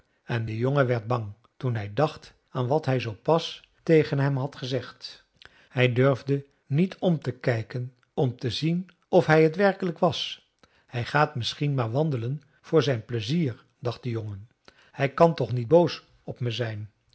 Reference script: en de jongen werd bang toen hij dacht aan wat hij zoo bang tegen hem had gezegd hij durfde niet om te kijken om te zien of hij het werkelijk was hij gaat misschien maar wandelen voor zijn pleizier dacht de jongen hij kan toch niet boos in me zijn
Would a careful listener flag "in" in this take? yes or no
yes